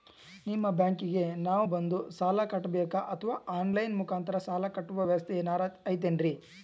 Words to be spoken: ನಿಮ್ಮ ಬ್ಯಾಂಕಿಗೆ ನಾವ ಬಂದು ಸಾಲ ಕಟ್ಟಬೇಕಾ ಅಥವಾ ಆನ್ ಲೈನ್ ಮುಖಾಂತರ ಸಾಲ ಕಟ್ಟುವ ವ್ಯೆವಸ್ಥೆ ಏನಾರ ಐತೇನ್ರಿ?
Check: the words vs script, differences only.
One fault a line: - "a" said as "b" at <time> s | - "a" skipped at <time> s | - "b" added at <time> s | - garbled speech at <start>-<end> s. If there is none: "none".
none